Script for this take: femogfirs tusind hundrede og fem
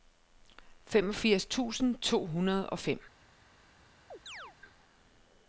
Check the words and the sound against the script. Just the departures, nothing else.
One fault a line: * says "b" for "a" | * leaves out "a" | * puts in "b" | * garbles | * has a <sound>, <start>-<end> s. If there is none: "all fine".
* puts in "to"
* has a chirp, 4.1-4.6 s